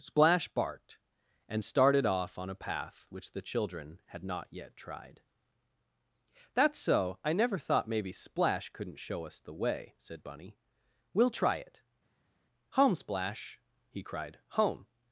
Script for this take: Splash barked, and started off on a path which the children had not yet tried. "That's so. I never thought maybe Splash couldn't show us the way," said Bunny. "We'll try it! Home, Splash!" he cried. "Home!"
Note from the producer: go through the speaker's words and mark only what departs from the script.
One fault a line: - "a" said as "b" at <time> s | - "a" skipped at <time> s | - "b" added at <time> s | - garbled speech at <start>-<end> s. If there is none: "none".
none